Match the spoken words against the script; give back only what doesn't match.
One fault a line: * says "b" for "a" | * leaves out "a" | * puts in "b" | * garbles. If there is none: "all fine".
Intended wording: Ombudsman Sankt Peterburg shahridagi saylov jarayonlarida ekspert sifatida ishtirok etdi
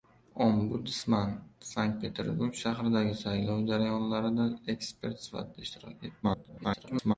* garbles